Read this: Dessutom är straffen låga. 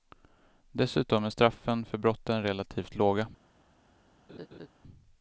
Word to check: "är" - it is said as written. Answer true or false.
true